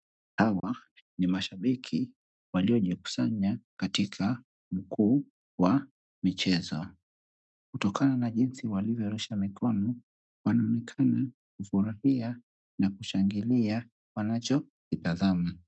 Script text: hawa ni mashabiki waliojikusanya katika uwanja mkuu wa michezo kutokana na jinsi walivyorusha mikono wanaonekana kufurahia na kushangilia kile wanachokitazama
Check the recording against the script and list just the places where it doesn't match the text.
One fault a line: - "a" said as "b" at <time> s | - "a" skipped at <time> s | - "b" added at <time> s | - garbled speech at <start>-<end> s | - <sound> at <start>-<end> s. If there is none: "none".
- dropout at 0.6-0.6 s
- "uwanja" skipped at 4.4 s
- "kile" skipped at 13.9 s